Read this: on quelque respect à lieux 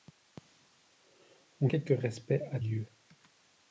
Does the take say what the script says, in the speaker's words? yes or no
yes